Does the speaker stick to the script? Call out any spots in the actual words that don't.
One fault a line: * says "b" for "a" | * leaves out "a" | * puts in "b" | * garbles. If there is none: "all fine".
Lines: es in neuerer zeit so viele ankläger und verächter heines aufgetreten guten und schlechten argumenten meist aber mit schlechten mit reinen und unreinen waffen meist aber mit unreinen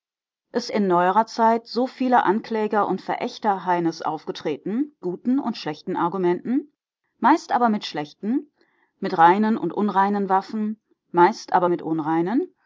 all fine